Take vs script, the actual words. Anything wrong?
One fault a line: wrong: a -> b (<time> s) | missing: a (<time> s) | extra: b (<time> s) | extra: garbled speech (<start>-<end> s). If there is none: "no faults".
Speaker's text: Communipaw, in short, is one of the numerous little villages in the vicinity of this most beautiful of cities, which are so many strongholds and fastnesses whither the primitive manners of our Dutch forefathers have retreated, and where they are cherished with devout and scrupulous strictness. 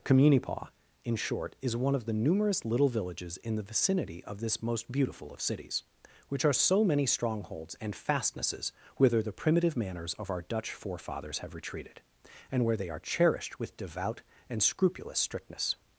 no faults